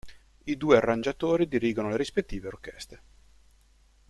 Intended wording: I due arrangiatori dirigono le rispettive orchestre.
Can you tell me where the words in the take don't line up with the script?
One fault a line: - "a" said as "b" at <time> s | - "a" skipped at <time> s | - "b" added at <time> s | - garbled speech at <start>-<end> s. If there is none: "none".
none